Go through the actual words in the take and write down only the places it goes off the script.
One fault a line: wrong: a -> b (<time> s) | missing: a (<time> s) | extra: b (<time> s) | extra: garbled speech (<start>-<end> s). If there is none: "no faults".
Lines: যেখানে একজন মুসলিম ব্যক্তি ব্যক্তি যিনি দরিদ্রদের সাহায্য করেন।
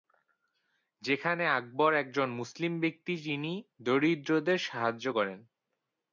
extra: আকবর (1.5 s)
missing: ব্যক্তি (3.1 s)